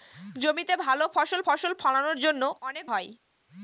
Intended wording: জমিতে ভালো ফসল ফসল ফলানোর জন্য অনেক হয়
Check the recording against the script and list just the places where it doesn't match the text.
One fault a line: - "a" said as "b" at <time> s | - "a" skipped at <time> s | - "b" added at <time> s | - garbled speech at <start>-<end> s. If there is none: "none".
none